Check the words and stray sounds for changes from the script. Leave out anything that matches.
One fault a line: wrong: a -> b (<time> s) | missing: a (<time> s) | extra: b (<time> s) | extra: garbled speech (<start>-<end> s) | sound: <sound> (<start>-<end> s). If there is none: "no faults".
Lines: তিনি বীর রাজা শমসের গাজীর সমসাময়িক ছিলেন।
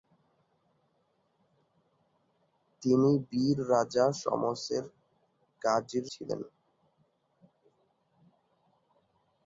missing: সমসাময়িক (6.1 s)